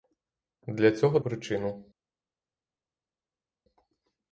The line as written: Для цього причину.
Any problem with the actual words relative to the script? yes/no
no